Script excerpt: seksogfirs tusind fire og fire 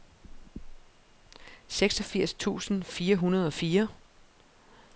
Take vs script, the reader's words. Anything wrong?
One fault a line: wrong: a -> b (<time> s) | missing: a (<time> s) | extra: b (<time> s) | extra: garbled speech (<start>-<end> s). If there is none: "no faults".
extra: hundrede (3.1 s)